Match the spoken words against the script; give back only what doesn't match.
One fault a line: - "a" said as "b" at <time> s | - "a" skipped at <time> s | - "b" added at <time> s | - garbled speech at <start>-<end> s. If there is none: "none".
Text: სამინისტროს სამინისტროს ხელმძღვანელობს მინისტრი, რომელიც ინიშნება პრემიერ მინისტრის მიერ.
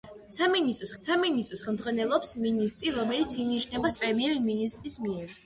none